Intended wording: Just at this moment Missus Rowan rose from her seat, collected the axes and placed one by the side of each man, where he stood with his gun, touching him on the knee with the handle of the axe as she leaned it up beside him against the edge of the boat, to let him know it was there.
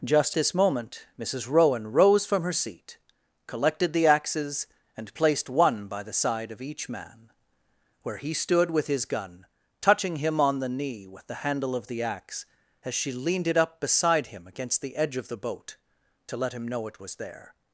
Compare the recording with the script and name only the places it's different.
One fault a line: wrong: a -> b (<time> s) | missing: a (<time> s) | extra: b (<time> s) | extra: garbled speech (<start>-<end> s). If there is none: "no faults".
missing: at (0.3 s)